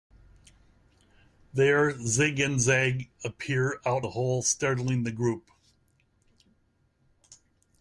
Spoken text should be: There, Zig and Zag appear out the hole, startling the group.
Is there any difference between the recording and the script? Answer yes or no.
no